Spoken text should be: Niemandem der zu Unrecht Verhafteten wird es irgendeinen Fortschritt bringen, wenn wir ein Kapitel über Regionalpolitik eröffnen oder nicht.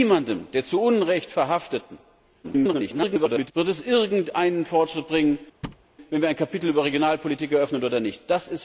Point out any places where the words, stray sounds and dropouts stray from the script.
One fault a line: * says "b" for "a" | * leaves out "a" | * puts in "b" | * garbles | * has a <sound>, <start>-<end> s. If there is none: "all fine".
* garbles
* has a thud, 5.6-5.9 s